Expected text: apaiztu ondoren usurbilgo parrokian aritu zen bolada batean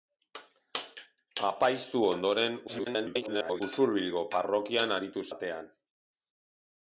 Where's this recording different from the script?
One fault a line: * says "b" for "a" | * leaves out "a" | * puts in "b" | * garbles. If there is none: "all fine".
* garbles
* leaves out "zen bolada"